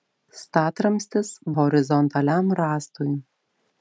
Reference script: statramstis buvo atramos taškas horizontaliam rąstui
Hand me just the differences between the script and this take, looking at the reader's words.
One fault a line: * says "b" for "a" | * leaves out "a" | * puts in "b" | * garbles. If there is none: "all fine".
* leaves out "buvo atramos taškas"